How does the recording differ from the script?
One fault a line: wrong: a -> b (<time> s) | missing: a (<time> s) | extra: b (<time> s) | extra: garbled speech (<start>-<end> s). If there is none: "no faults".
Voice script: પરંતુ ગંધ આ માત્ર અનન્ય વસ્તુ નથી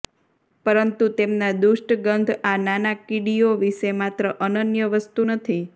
extra: તેમના દુષ્ટ (1.2 s)
extra: નાના કીડીઓ વિશે (2.6 s)